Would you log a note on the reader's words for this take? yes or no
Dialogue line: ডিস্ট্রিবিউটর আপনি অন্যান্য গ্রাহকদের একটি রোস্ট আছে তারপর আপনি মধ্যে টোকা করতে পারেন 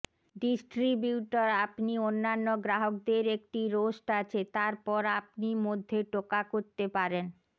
no